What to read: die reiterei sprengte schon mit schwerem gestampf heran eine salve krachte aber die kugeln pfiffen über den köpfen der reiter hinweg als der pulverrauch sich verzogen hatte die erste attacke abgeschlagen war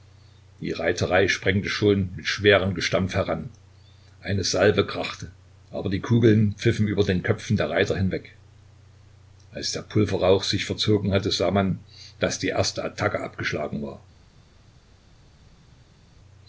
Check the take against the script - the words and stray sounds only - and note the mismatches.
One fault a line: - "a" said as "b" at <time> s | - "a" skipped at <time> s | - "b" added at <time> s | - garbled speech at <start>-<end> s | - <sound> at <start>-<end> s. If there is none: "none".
- "sah man daß" added at 11.3 s